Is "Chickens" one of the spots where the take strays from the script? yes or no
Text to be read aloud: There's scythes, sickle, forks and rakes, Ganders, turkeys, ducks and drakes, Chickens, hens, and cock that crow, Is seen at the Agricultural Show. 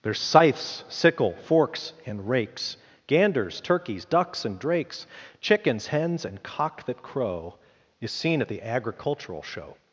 no